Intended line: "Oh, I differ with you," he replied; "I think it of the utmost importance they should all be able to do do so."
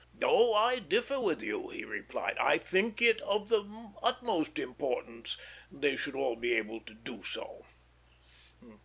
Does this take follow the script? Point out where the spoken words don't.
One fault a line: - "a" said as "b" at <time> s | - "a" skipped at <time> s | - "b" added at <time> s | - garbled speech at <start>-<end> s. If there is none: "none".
- "do" skipped at 7.2 s